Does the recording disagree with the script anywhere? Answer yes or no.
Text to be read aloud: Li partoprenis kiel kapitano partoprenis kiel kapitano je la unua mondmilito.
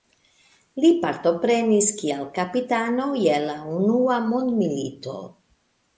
yes